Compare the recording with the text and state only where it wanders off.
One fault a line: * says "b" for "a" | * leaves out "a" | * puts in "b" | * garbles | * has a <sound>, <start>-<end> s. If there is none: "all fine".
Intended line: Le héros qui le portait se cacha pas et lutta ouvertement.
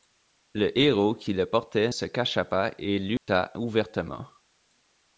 * has a dropout, 3.2-3.3 s